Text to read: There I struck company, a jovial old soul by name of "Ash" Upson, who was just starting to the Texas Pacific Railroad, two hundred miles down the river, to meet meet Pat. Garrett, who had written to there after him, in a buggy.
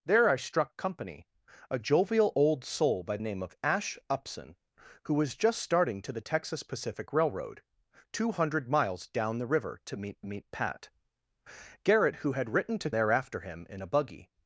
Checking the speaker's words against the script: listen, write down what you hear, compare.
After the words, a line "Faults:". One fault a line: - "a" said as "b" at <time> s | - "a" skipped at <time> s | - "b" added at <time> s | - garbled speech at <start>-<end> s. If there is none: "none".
There I struck company, a jovial old soul by name of "Ash" Upson, who was just starting to the Texas Pacific Railroad, two hundred miles down the river, to meet meet Pat. Garrett, who had written to there after him, in a buggy.
Faults:
none